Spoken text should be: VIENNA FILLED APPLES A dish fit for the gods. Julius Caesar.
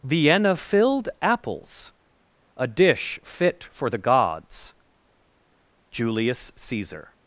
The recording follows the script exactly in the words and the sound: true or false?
true